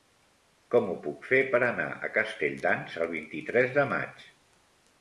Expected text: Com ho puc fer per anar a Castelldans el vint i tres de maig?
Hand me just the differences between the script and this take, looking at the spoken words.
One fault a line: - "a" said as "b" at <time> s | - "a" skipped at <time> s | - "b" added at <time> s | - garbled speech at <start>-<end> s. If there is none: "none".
none